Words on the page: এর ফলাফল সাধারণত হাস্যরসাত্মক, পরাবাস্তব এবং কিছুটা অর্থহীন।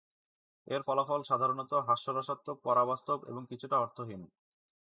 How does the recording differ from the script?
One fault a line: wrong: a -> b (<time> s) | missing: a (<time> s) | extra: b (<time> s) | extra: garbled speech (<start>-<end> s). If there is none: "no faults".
no faults